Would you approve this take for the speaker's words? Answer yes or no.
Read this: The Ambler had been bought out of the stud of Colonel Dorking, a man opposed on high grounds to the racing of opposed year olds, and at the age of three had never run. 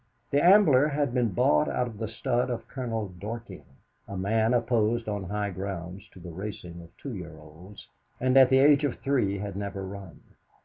no